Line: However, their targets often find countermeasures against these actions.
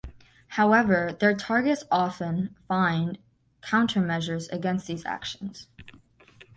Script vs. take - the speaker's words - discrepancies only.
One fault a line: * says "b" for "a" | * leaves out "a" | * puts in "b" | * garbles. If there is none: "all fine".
all fine